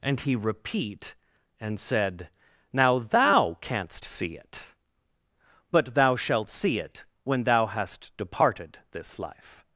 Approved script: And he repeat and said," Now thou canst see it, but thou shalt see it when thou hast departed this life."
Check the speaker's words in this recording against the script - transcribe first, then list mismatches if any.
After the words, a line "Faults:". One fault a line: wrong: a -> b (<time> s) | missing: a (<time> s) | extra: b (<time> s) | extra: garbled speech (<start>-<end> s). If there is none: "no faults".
And he repeat and said," Now thou canst see it, but thou shalt see it when thou hast departed this life."
Faults:
no faults